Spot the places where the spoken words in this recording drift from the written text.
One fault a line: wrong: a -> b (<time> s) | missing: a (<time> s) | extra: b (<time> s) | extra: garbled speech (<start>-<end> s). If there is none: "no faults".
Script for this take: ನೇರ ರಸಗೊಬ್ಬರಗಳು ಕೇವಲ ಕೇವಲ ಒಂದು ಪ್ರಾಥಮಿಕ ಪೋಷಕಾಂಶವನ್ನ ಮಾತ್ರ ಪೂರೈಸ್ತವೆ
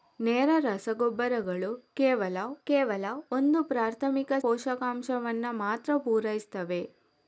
no faults